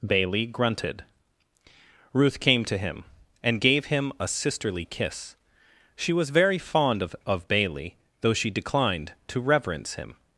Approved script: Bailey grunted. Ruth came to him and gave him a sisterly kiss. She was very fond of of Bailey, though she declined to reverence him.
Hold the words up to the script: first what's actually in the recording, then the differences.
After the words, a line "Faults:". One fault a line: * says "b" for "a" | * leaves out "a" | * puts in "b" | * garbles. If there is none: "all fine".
Bailey grunted. Ruth came to him and gave him a sisterly kiss. She was very fond of of Bailey, though she declined to reverence him.
Faults:
all fine